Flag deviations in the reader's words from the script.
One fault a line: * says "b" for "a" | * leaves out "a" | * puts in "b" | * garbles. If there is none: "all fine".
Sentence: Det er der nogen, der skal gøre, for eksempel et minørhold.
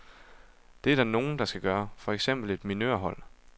all fine